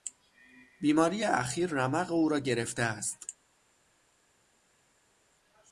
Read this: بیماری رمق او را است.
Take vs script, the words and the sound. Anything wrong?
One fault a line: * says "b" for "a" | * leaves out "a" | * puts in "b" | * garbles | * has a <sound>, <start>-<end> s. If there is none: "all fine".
* puts in "اخیر"
* puts in "گرفته"